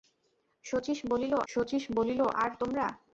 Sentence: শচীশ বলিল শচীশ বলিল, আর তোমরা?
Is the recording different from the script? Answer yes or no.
no